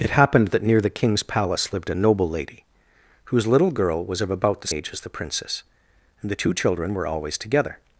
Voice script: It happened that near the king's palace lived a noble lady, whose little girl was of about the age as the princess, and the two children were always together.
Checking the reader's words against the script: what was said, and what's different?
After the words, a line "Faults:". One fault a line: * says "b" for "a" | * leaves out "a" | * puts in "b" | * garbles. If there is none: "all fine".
It happened that near the king's palace lived a noble lady, whose little girl was of about the age as the princess, and the two children were always together.
Faults:
all fine